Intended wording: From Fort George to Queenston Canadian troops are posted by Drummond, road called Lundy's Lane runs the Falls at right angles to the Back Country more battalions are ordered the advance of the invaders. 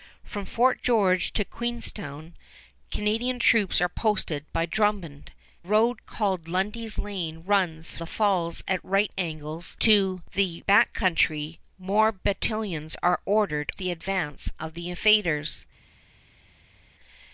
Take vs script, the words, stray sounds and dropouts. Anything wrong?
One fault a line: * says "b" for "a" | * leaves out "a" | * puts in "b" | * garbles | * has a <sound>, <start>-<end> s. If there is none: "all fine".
all fine